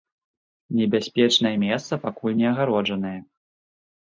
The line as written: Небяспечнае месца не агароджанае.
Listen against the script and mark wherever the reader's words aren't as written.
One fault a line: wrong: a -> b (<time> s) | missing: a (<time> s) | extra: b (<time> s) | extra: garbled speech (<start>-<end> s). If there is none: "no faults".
extra: пакуль (2.0 s)